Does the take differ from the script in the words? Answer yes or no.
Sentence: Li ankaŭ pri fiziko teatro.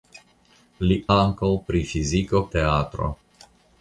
no